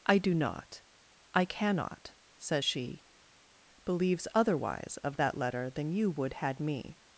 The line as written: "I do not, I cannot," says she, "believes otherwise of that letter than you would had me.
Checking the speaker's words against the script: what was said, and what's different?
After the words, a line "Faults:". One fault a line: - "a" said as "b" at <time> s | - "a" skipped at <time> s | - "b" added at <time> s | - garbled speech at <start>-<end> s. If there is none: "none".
"I do not, I cannot," says she, "believes otherwise of that letter than you would had me.
Faults:
none